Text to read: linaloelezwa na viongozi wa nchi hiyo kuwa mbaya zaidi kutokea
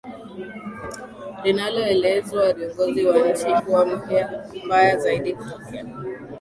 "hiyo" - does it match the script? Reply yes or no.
no